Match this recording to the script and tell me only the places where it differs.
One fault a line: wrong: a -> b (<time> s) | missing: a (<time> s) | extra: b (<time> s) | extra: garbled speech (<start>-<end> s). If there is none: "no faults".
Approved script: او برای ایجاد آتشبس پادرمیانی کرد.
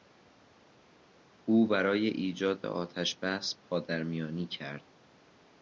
no faults